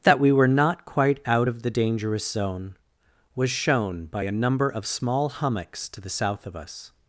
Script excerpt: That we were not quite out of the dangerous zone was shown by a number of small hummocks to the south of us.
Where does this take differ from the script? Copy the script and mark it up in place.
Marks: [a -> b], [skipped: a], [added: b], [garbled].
That we were not quite out of the dangerous zone was shown by a number of small hummocks to the south of us.